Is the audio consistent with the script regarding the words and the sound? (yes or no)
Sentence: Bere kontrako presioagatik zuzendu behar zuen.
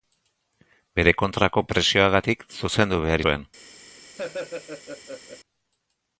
no